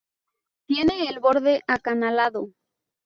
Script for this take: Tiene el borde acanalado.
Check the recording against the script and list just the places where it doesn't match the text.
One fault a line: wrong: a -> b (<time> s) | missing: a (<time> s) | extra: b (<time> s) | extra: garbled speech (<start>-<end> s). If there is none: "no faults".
no faults